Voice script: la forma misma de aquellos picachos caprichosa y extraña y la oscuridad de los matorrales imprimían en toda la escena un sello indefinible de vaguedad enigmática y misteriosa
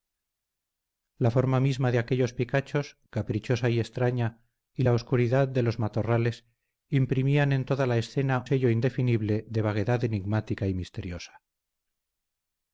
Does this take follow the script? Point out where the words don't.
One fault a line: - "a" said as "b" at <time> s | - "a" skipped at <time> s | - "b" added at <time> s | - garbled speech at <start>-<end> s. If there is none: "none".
- "un" skipped at 8.4 s